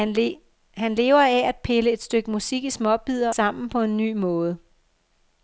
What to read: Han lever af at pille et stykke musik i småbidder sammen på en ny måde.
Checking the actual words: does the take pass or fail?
pass